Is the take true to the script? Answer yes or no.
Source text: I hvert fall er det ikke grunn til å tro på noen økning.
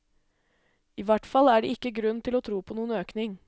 yes